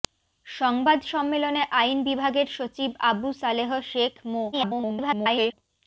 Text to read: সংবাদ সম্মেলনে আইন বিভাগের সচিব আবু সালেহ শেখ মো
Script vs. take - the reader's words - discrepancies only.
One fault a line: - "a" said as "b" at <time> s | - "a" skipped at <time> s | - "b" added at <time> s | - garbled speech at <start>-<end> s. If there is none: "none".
- garbled speech at 4.5-5.5 s